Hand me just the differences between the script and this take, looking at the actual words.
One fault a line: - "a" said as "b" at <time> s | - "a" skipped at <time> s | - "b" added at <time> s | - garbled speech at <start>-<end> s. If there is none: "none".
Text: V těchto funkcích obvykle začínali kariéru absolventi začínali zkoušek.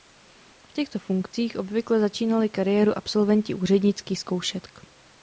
- "začínali" said as "úřednických" at 3.5 s